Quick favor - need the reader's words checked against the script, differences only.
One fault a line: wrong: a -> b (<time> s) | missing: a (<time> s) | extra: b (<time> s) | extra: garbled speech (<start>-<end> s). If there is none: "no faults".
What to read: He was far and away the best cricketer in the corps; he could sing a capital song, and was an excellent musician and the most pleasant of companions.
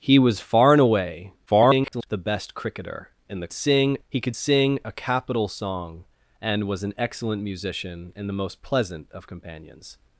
extra: garbled speech (1.5-2.1 s)
wrong: corps -> sing (3.5 s)